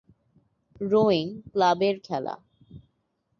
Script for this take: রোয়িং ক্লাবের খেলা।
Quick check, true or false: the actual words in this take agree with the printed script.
true